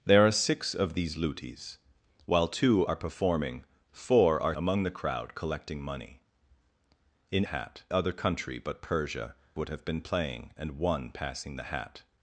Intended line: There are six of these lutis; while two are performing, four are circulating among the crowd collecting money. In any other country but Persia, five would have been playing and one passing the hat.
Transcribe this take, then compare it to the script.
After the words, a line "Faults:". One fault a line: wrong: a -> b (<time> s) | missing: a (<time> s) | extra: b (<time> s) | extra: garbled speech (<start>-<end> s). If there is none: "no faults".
There are six of these lutis; while two are performing, four are among the crowd collecting money. In hat other country but Persia, would have been playing and one passing the hat.
Faults:
missing: circulating (4.6 s)
wrong: any -> hat (7.4 s)
missing: five (9.3 s)